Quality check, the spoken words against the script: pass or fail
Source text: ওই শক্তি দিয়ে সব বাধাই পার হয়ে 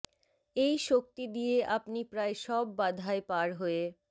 fail